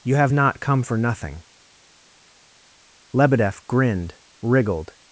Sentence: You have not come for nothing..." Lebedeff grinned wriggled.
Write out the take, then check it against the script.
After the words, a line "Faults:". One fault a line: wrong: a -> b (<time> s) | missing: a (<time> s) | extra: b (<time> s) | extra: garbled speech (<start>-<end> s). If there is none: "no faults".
You have not come for nothing..." Lebedeff grinned wriggled.
Faults:
no faults